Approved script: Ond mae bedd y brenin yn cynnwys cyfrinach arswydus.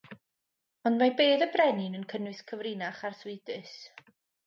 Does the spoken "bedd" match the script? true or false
true